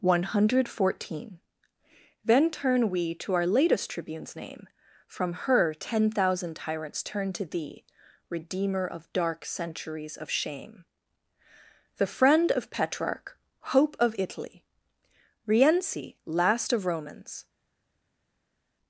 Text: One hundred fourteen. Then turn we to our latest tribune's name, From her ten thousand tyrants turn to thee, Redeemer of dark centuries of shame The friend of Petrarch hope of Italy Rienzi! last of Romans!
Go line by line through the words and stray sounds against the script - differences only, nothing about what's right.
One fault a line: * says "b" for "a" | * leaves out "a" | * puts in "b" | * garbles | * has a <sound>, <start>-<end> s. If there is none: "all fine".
all fine